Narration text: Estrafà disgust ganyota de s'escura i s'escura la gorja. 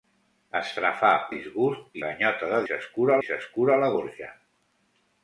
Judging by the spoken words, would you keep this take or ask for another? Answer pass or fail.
pass